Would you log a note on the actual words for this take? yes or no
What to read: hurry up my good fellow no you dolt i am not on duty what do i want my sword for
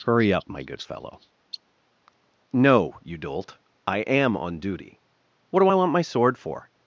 yes